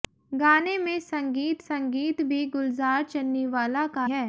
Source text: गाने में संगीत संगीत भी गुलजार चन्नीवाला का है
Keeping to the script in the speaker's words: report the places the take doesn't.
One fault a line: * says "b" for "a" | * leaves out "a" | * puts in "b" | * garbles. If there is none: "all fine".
all fine